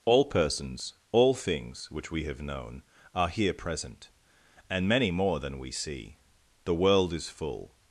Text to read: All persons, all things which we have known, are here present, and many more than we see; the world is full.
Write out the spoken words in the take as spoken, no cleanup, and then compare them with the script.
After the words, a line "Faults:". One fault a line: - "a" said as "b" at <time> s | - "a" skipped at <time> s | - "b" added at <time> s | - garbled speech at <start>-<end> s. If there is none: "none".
All persons, all things which we have known, are here present, and many more than we see; the world is full.
Faults:
none